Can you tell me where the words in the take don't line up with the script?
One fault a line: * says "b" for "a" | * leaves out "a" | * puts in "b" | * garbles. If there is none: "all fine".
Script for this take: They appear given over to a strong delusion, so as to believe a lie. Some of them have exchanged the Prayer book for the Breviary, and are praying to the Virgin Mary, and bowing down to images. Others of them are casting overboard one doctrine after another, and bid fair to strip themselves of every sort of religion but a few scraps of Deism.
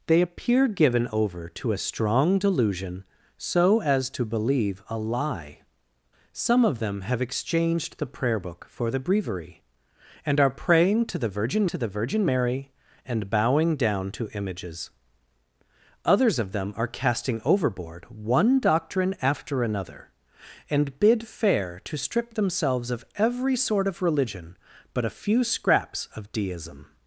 * puts in "to the Virgin"